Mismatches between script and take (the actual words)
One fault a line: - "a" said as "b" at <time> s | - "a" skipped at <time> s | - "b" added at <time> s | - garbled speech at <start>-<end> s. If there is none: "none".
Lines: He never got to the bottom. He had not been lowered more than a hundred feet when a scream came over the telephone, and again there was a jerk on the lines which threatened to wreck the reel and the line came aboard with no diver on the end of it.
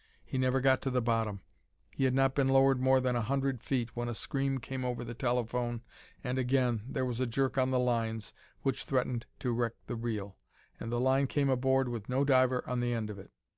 none